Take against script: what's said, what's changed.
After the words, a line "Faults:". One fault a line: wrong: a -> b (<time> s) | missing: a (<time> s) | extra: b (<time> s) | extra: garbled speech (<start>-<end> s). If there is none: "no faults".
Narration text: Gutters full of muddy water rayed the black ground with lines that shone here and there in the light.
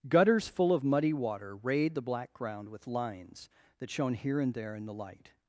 Gutters full of muddy water rayed the black ground with lines that shone here and there in the light.
Faults:
no faults